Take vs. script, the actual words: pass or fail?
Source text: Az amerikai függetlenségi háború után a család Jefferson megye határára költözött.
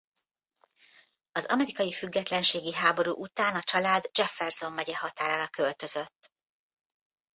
pass